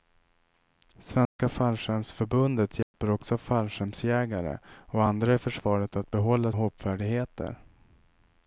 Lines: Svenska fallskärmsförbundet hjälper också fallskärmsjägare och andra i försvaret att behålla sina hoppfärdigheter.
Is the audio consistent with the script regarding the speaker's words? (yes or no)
no